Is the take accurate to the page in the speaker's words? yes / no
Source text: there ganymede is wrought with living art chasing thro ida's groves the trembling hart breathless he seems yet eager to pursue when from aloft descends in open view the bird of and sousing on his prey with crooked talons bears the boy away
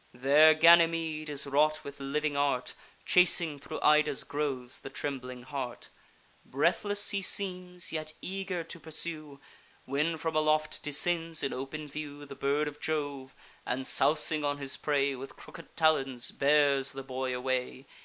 no